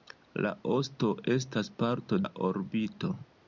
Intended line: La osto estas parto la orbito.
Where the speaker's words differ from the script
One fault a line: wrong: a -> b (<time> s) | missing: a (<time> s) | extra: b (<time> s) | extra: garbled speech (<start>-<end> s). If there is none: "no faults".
no faults